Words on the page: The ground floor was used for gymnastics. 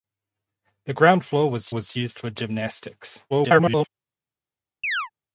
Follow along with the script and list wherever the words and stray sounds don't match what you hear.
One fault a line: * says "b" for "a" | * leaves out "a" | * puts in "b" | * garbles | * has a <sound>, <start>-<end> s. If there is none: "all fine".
* puts in "was"
* garbles
* has a chirp, 4.8-5.1 s